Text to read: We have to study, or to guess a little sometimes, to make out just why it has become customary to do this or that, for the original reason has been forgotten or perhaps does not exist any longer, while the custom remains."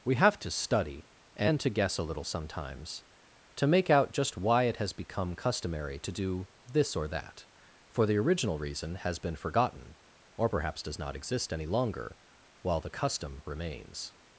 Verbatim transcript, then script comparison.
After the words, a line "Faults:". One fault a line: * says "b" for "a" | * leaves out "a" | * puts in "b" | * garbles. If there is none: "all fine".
We have to study, and to guess a little sometimes, to make out just why it has become customary to do this or that, for the original reason has been forgotten or perhaps does not exist any longer, while the custom remains."
Faults:
* says "and" for "or"